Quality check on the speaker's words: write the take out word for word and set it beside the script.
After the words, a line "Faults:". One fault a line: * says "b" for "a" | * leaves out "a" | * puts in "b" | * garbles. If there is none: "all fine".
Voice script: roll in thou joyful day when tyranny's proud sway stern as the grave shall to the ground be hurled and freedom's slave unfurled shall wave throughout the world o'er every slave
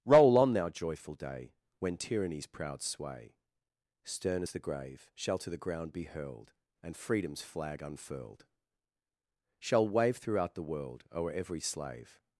roll on thou joyful day when tyranny's proud sway stern as the grave shall to the ground be hurled and freedom's flag unfurled shall wave throughout the world o'er every slave
Faults:
* says "on" for "in"
* says "flag" for "slave"